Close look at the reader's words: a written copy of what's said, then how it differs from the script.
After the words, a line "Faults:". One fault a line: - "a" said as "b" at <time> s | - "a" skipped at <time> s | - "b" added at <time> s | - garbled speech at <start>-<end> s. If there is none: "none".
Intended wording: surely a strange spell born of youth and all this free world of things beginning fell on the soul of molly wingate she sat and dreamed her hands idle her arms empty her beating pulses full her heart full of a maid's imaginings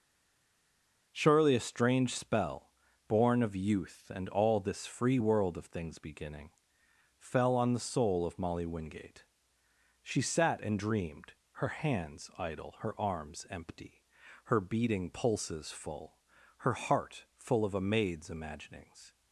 surely a strange spell born of youth and all this free world of things beginning fell on the soul of molly wingate she sat and dreamed her hands idle her arms empty her beating pulses full her heart full of a maid's imaginings
Faults:
none